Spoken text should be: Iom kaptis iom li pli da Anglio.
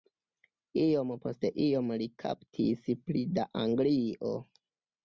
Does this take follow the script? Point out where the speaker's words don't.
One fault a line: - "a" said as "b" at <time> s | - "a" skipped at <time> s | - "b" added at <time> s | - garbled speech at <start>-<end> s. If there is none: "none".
- "kaptis" said as "post" at 1.3 s
- "kaptis" added at 2.3 s